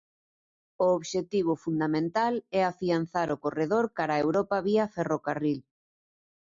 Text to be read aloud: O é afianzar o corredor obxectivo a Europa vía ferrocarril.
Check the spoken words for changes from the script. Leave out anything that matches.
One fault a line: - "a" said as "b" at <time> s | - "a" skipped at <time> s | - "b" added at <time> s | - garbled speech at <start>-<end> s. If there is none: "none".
- "obxectivo fundamental" added at 1.0 s
- "obxectivo" said as "cara" at 4.0 s